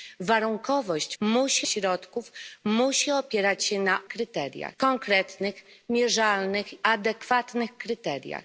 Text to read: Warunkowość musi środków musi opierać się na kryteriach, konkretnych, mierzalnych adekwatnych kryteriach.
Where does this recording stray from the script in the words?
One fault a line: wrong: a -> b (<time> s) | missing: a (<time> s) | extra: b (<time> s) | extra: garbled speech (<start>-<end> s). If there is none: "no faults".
no faults